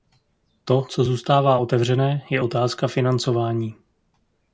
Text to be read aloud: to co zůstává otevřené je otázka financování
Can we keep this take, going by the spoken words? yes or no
yes